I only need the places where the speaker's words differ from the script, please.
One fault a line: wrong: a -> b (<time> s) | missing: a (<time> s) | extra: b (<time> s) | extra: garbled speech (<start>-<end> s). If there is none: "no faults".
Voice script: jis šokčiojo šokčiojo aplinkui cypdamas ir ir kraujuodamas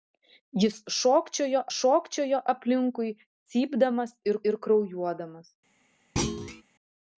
no faults